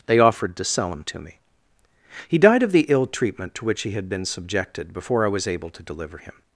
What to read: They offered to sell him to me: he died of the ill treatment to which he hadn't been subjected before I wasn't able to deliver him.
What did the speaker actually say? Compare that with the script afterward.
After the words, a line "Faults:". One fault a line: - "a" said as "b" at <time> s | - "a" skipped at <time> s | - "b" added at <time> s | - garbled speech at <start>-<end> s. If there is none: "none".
They offered to sell him to me: he died of the ill treatment to which he had been subjected before I was able to deliver him.
Faults:
- "hadn't" said as "had" at 3.9 s
- "wasn't" said as "was" at 5.3 s